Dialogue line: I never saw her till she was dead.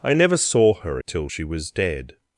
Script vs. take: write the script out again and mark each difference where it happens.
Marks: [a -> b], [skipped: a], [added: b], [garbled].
I never saw her till she was dead.